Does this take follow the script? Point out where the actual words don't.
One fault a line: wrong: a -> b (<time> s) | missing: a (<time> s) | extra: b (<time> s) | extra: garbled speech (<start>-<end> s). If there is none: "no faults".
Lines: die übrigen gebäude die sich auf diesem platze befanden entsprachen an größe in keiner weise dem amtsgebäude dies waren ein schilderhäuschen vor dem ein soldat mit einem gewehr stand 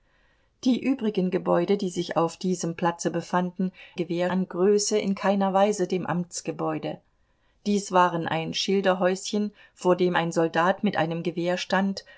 wrong: entsprachen -> gewehr (3.9 s)